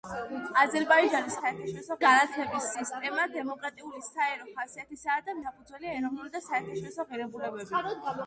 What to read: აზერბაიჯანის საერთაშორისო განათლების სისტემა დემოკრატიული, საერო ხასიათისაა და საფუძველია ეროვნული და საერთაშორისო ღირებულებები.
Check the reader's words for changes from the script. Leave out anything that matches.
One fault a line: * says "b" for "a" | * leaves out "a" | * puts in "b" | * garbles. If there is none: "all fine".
all fine